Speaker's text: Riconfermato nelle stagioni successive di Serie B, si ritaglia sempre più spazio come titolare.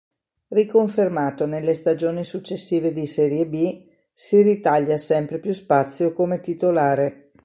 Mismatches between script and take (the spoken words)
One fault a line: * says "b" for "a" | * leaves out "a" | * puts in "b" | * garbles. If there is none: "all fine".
all fine